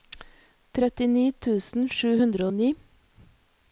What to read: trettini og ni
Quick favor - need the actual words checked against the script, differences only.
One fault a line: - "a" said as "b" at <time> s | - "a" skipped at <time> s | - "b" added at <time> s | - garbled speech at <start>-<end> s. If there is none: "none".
- "tusen sju hundre" added at 1.5 s